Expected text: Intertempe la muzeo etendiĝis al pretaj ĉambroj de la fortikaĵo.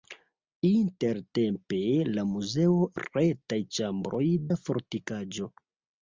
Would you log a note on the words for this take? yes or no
yes